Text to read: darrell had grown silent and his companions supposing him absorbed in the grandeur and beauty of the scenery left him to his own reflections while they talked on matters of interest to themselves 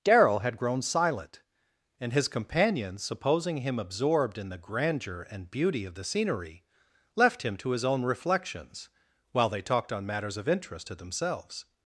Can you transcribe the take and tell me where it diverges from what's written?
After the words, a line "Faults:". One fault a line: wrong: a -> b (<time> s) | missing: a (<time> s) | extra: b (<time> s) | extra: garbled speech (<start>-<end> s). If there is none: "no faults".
darrell had grown silent and his companions supposing him absorbed in the grandeur and beauty of the scenery left him to his own reflections while they talked on matters of interest to themselves
Faults:
no faults